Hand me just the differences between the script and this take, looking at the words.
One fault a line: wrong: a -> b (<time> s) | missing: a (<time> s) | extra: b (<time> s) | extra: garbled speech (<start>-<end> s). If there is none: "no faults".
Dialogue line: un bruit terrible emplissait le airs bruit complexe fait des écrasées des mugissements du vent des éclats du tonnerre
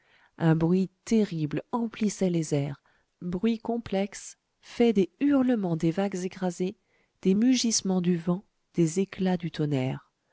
wrong: le -> les (2.3 s)
extra: hurlements des vagues (5.2 s)